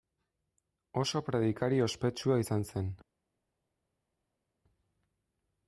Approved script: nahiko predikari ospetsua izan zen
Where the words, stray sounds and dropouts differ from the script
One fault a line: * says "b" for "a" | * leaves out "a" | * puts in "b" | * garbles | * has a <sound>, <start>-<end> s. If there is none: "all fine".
* says "oso" for "nahiko"